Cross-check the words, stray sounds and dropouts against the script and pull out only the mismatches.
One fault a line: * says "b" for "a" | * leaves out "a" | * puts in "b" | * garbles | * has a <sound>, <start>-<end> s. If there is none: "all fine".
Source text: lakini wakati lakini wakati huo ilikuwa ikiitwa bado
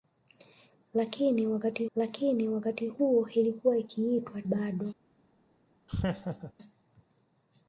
* has a laugh, 5.9-6.5 s